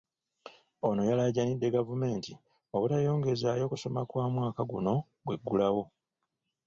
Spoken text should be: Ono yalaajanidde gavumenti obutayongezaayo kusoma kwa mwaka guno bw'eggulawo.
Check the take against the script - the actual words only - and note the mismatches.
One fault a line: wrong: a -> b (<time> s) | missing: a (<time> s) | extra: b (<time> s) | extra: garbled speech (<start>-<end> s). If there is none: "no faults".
no faults